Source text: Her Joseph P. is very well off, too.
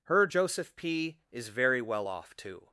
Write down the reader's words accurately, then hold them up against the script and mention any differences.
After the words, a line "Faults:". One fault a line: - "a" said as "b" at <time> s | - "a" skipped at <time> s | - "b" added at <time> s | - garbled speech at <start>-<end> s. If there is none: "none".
Her Joseph P. is very well off, too.
Faults:
none